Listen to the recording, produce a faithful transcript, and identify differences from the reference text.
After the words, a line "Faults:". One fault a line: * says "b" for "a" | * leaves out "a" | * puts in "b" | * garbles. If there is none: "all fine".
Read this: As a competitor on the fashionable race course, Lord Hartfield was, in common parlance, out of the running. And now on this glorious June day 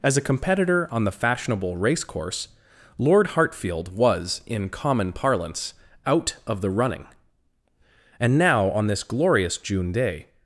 As a competitor on the fashionable race course, Lord Hartfield was, in common parlance, out of the running. And now on this glorious June day
Faults:
all fine